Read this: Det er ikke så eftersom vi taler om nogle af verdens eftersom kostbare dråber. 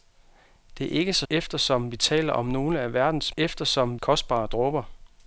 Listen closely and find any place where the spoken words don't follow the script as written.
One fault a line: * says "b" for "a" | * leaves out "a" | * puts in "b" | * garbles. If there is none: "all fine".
all fine